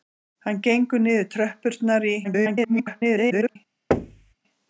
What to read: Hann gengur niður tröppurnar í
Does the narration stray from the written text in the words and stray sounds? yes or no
yes